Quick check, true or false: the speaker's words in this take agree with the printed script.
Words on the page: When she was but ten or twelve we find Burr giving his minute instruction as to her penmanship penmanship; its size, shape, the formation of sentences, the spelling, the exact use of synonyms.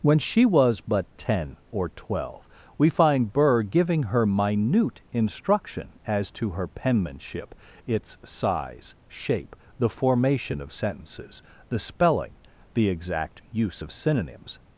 false